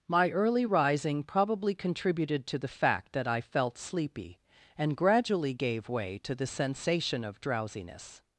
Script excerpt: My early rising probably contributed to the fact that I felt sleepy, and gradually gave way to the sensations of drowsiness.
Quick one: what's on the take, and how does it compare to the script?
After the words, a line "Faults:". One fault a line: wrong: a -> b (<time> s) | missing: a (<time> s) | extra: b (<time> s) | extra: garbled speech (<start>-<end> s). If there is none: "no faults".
My early rising probably contributed to the fact that I felt sleepy, and gradually gave way to the sensation of drowsiness.
Faults:
wrong: sensations -> sensation (6.5 s)